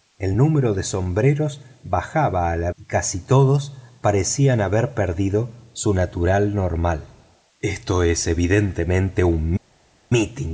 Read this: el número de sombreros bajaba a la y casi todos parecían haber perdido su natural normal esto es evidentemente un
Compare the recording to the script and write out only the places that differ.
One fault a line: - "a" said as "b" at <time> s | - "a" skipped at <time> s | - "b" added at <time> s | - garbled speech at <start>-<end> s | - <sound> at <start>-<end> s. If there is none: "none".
none